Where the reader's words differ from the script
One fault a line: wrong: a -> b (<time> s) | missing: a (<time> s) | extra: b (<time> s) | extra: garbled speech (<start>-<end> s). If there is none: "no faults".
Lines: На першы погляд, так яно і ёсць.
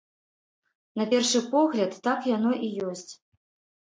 no faults